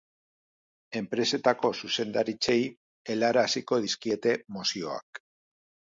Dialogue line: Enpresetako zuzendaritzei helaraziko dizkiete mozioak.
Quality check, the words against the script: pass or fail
pass